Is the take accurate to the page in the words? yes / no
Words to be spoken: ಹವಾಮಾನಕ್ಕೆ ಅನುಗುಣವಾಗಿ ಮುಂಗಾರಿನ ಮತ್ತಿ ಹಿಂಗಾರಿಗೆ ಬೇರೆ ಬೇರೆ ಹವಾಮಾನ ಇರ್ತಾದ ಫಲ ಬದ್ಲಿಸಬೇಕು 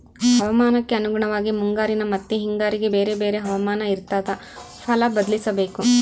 yes